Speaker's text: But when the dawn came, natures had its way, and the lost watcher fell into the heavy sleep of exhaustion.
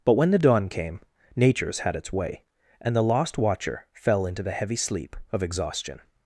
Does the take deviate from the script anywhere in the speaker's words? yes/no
no